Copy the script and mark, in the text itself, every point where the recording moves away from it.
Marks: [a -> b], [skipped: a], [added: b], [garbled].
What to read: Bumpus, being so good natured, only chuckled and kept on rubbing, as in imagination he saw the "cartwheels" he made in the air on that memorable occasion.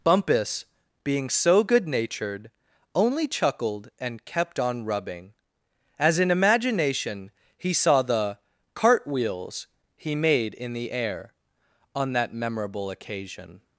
Bumpus, being so good natured, only chuckled and kept on rubbing, as in imagination he saw the "cartwheels" he made in the air on that memorable occasion.